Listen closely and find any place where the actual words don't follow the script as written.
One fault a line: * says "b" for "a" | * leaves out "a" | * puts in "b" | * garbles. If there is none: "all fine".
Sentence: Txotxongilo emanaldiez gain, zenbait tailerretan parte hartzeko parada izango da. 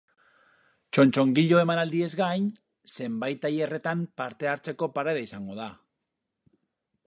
all fine